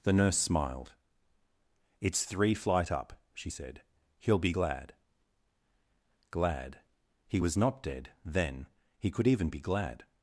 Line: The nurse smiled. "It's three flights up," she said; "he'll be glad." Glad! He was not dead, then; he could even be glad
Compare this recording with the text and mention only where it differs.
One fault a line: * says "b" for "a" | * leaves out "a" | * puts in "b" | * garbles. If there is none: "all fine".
* says "flight" for "flights"